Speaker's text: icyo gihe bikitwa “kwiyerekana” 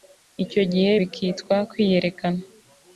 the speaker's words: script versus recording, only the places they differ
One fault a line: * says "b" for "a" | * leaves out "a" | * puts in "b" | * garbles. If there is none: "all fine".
all fine